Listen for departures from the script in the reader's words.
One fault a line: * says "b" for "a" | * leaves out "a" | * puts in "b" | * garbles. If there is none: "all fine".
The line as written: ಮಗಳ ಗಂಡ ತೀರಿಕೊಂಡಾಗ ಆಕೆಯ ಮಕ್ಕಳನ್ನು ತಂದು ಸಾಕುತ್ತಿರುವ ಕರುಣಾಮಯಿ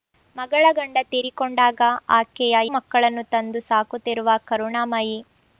all fine